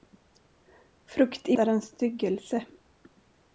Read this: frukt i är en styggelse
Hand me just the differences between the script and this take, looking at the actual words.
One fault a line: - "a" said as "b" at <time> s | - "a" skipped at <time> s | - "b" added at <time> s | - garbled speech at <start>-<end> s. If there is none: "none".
none